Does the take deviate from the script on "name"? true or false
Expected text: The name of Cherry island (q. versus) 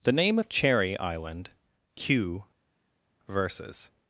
false